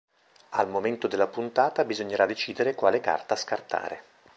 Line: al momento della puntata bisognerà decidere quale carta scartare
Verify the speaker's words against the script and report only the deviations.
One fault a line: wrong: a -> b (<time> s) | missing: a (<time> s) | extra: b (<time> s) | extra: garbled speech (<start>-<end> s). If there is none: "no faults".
no faults